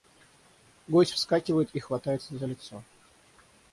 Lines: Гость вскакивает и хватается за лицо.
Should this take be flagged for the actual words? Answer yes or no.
no